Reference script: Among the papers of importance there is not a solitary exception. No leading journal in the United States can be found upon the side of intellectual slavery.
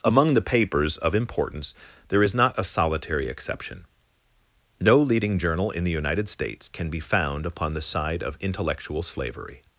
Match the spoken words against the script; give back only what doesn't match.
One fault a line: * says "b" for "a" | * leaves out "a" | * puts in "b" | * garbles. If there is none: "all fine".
all fine